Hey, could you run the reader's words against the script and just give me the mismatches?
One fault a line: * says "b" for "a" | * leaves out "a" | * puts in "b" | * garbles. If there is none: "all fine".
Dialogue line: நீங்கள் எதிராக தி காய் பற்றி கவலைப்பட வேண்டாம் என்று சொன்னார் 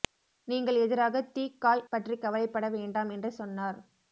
all fine